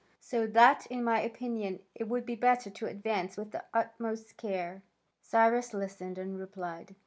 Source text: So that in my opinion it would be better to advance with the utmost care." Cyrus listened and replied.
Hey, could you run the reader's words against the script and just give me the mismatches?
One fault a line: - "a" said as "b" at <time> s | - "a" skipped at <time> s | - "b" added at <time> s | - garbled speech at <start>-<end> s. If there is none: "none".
none